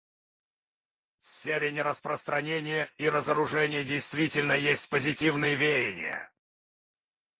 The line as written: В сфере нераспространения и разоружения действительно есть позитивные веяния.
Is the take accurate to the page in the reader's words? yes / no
yes